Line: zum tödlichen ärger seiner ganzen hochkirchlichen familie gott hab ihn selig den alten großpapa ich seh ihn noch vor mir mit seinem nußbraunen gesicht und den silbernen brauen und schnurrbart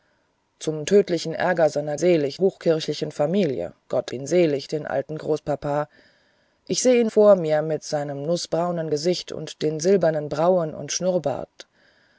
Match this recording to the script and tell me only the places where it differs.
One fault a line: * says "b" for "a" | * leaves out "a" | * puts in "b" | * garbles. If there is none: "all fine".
* says "selig" for "ganzen"
* leaves out "hab"
* leaves out "noch"